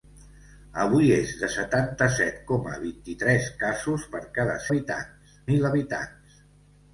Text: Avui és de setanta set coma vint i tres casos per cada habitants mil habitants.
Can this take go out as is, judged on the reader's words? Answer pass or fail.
pass